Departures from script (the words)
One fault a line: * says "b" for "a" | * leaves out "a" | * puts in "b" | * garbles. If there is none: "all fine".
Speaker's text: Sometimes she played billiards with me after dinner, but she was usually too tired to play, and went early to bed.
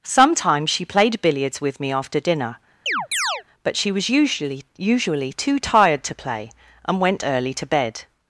* puts in "usually"